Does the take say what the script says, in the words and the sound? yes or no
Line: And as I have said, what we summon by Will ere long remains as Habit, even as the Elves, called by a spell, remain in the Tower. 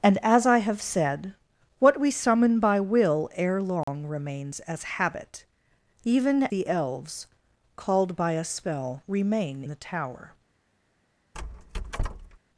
no